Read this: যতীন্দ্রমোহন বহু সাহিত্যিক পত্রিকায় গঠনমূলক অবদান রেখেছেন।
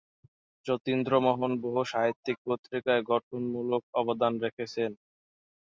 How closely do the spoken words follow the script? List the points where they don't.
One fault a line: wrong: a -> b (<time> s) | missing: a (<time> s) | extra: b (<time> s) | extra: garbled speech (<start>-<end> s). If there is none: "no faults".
no faults